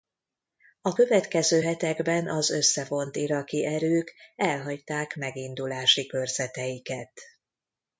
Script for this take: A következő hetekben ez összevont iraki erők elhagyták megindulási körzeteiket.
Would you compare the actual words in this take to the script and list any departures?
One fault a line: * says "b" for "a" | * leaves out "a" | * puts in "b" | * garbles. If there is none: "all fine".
* says "az" for "ez"